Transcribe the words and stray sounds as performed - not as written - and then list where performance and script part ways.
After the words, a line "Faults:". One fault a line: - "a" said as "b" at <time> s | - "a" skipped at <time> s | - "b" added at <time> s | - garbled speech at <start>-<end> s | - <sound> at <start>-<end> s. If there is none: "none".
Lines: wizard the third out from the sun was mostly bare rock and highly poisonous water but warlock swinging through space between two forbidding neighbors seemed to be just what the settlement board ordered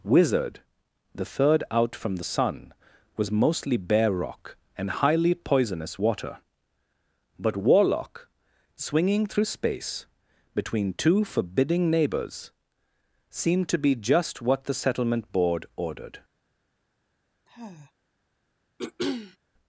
wizard the third out from the sun was mostly bare rock and highly poisonous water but warlock swinging through space between two forbidding neighbors seemed to be just what the settlement board ordered
Faults:
- sigh at 17.5-17.9 s
- throat clearing at 18.8-19.4 s